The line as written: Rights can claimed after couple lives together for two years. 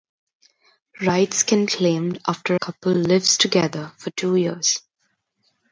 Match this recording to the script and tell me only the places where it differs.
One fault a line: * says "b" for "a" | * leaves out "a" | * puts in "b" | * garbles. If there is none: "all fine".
all fine